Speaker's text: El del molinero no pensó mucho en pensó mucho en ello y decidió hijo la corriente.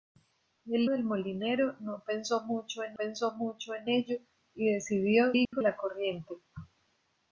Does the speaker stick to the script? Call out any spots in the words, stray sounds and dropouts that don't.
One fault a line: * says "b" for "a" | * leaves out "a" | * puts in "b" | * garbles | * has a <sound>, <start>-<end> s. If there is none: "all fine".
* has a dropout, 5.4-5.5 s